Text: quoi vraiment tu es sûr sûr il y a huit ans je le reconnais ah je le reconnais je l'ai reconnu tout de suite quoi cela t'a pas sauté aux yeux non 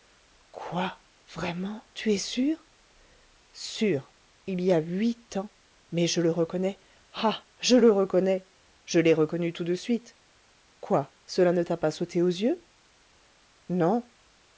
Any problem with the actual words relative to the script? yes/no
yes